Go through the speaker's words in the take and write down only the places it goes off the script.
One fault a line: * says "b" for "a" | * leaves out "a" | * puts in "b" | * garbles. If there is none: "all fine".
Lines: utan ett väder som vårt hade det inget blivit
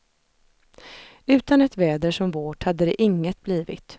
all fine